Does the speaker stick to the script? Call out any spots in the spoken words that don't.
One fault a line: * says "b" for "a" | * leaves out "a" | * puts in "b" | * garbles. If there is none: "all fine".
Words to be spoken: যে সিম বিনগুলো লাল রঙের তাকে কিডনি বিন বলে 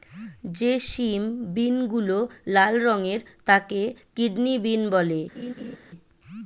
all fine